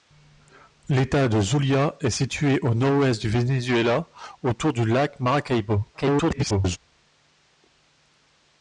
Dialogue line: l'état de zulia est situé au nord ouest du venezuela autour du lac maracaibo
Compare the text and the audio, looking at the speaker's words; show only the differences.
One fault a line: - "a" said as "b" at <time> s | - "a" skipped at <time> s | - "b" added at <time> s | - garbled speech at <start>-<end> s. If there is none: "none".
- garbled speech at 5.9-6.8 s